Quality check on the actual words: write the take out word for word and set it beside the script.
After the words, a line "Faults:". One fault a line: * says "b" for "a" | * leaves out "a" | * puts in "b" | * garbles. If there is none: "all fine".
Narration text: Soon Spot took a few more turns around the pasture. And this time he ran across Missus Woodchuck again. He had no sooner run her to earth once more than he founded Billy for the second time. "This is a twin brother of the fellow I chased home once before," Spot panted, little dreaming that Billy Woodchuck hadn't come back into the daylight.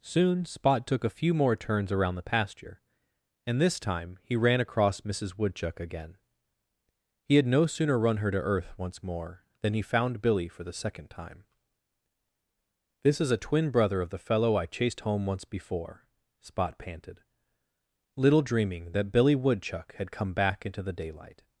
Soon Spot took a few more turns around the pasture. And this time he ran across Missus Woodchuck again. He had no sooner run her to earth once more than he found Billy for the second time. "This is a twin brother of the fellow I chased home once before," Spot panted, little dreaming that Billy Woodchuck had come back into the daylight.
Faults:
* says "found" for "founded"
* says "had" for "hadn't"